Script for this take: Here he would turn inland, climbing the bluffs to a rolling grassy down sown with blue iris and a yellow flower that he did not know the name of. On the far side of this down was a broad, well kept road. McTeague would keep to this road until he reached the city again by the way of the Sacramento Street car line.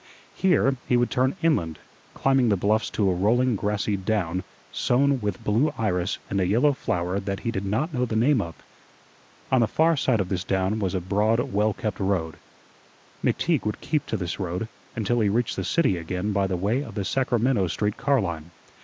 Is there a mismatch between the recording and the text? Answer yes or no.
no